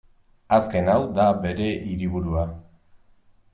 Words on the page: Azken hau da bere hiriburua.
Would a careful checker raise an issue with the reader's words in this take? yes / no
no